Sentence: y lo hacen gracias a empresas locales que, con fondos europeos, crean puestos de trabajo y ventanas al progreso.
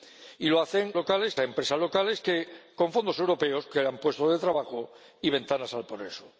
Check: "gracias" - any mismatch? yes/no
yes